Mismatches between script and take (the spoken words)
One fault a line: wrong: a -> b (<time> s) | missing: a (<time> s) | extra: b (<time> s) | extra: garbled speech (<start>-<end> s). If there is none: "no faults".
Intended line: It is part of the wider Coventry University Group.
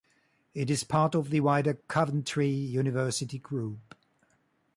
no faults